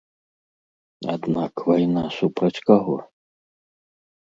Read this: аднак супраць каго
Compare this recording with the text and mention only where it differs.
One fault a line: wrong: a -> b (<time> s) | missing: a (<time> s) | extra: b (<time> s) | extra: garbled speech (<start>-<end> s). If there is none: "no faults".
extra: вайна (1.7 s)